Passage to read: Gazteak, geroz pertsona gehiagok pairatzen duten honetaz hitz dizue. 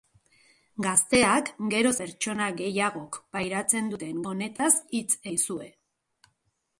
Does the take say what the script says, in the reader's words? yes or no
yes